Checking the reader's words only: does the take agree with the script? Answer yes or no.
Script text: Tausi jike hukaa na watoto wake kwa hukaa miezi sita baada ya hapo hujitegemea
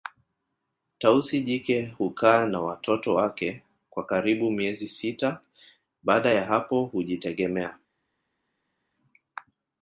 no